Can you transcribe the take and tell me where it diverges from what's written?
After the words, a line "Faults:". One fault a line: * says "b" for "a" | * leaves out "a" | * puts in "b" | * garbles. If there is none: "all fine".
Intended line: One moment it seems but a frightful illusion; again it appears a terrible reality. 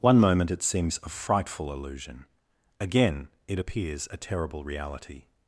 One moment it seems a frightful illusion; again it appears a terrible reality.
Faults:
* leaves out "but"